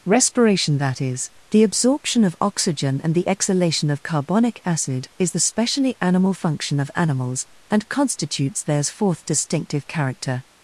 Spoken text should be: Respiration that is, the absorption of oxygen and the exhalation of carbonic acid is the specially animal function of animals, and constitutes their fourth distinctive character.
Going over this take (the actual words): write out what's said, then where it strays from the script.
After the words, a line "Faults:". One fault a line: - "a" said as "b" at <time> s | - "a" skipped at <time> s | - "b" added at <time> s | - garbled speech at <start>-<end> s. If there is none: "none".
Respiration that is, the absorption of oxygen and the exhalation of carbonic acid is the specially animal function of animals, and constitutes theirs fourth distinctive character.
Faults:
- "their" said as "theirs" at 8.6 s